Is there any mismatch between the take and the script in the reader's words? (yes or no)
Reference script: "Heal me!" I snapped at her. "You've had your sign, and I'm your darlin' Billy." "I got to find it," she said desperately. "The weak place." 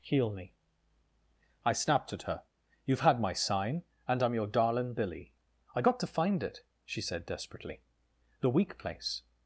yes